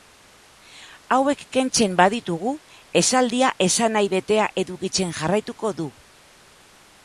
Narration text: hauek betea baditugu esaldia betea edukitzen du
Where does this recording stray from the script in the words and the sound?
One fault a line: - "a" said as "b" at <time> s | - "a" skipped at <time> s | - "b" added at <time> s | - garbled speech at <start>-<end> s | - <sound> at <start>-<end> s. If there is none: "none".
- "betea" said as "kentzen" at 1.6 s
- "esanahi" added at 3.7 s
- "jarraituko" added at 5.2 s